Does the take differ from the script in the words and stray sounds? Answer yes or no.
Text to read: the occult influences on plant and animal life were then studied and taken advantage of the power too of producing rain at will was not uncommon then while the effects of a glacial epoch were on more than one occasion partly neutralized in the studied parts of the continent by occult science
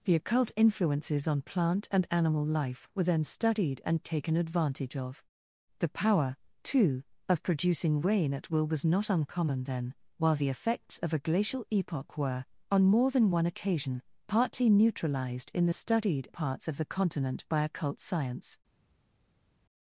no